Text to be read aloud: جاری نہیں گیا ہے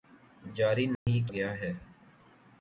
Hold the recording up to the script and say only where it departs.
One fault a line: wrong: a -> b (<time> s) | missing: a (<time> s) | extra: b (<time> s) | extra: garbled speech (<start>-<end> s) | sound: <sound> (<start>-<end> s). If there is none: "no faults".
sound: dropout (0.9-1.1 s)